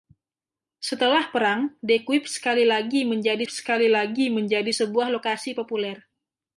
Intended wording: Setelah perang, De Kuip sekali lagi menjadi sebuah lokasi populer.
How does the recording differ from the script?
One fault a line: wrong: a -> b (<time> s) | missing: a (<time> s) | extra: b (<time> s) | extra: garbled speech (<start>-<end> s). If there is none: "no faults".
extra: sekali lagi menjadi (3.5 s)